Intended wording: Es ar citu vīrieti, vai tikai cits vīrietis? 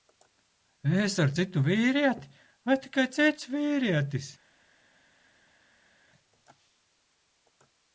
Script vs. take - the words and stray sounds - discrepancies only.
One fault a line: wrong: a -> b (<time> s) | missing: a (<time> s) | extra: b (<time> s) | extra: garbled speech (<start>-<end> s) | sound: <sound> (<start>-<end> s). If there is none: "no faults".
no faults